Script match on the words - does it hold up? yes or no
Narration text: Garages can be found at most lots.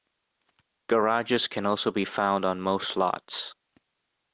no